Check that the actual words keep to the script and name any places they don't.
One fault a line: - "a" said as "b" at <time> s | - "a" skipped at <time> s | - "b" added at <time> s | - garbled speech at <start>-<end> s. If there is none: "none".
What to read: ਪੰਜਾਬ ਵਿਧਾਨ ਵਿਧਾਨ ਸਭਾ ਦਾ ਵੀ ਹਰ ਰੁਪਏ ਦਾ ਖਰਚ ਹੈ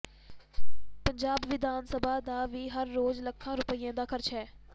- "ਵਿਧਾਨ" skipped at 1.8 s
- "ਰੋਜ਼ ਲੱਖਾਂ" added at 2.9 s